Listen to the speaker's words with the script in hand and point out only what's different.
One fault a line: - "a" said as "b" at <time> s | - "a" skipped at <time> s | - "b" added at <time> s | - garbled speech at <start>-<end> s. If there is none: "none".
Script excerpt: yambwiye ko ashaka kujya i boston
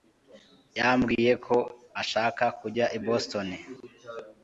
none